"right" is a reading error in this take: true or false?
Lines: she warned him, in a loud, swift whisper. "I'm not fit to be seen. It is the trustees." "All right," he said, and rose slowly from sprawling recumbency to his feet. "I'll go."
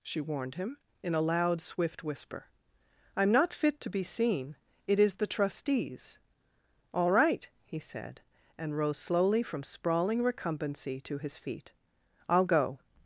false